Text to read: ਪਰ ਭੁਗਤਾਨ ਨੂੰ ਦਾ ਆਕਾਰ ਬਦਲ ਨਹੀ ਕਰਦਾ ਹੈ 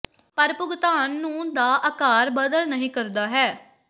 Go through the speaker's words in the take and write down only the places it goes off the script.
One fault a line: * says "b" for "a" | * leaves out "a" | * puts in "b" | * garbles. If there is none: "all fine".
all fine